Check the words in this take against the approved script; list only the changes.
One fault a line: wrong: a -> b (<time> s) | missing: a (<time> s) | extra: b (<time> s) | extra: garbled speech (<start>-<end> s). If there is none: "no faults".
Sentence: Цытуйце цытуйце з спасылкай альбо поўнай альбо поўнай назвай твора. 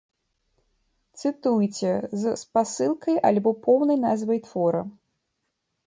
missing: цытуйце (1.9 s)
missing: альбо поўнай (4.0 s)